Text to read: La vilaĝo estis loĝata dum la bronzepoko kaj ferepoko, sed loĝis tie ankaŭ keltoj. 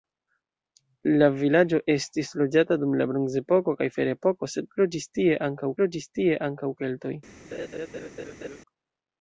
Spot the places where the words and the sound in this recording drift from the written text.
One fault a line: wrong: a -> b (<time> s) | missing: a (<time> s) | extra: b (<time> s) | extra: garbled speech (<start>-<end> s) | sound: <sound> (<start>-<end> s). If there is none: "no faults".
extra: loĝis tie ankaŭ (5.8 s)
sound: laugh (7.5-8.6 s)